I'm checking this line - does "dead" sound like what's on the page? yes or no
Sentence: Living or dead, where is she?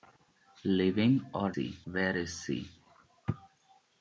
no